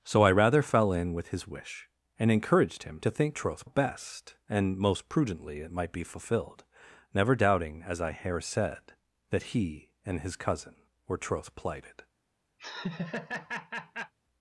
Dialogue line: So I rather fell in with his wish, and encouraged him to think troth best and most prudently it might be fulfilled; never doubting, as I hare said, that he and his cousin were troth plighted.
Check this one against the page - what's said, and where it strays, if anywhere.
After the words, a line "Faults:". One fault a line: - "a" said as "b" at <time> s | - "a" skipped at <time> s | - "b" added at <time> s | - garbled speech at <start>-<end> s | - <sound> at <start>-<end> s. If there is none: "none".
So I rather fell in with his wish, and encouraged him to think troth best and most prudently it might be fulfilled; never doubting, as I hare said, that he and his cousin were troth plighted.
Faults:
- laugh at 12.6-14.1 s